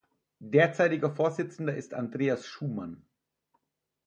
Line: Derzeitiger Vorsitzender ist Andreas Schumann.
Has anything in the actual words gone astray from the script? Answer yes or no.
no